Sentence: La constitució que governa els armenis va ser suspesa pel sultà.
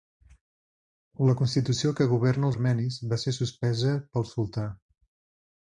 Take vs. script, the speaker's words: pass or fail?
fail